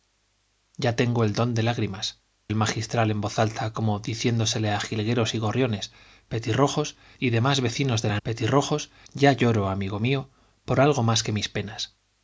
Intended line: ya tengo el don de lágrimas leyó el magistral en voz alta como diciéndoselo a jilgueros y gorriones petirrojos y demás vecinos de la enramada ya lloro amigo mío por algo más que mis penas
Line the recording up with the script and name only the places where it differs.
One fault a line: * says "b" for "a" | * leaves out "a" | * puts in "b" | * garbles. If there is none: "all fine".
* leaves out "leyó"
* says "petirrojos" for "enramada"